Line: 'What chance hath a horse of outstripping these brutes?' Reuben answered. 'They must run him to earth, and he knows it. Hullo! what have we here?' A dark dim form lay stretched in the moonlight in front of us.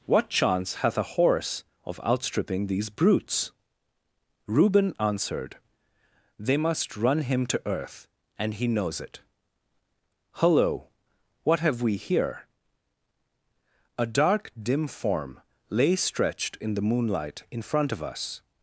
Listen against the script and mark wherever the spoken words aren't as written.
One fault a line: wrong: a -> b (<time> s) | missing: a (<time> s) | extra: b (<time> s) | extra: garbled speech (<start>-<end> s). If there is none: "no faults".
no faults